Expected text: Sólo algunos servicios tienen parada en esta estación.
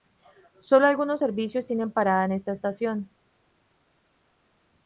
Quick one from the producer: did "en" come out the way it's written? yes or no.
yes